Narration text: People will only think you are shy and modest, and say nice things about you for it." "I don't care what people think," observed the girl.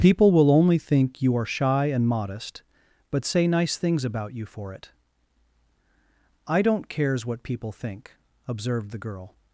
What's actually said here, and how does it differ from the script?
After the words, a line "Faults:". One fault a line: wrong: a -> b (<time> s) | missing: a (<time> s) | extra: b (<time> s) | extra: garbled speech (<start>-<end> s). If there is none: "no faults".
People will only think you are shy and modest, but say nice things about you for it." "I don't cares what people think," observed the girl.
Faults:
wrong: and -> but (3.1 s)
wrong: care -> cares (6.9 s)